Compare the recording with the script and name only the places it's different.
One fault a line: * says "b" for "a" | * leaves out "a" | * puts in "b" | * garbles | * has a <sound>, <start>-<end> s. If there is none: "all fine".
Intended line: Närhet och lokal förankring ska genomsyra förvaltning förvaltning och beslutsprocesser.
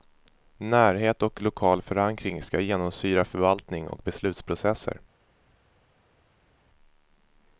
* leaves out "förvaltning"